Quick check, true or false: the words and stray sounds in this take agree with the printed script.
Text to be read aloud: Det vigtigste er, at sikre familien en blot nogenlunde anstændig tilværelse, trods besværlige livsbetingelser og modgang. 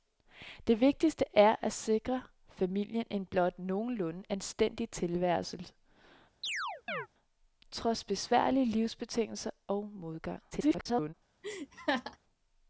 false